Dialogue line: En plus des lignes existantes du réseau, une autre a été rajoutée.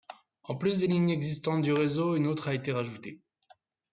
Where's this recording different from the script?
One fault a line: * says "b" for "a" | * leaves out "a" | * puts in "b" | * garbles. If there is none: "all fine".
all fine